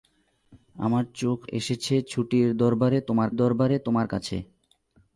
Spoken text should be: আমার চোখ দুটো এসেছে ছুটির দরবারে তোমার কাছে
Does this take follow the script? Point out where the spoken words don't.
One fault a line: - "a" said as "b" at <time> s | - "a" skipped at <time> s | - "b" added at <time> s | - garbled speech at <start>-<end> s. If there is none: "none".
- "দুটো" skipped at 1.4 s
- "দরবারে তোমার" added at 3.4 s